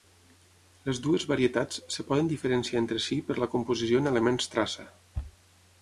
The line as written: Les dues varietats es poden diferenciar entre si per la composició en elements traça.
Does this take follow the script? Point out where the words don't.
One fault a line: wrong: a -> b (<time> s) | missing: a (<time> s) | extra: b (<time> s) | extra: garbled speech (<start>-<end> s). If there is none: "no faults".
no faults